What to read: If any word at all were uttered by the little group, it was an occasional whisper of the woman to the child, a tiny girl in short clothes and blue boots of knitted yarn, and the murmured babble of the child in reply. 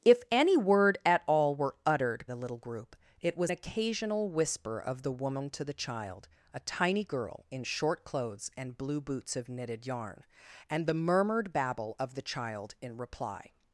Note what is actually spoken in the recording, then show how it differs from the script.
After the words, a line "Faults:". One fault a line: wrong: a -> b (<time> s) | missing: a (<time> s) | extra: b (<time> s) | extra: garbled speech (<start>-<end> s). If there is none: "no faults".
If any word at all were uttered the little group, it was occasional whisper of the woman to the child, a tiny girl in short clothes and blue boots of knitted yarn, and the murmured babble of the child in reply.
Faults:
missing: by (2.2 s)
missing: an (3.5 s)